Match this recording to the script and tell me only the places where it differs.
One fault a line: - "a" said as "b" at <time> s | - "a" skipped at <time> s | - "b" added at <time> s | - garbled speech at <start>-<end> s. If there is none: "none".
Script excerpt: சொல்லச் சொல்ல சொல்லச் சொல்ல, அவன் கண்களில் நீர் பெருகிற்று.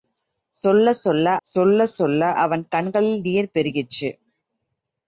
none